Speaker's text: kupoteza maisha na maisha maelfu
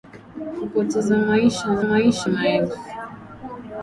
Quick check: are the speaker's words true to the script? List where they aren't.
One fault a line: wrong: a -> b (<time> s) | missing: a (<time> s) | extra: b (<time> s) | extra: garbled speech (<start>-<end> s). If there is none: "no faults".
no faults